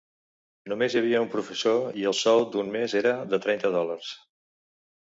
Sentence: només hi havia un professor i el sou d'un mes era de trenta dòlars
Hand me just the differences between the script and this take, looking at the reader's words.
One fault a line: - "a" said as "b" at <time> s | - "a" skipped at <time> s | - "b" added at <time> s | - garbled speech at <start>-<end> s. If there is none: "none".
none